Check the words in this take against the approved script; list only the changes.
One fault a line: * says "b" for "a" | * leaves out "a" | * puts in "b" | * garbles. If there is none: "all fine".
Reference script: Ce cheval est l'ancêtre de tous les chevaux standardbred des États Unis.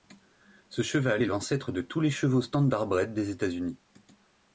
all fine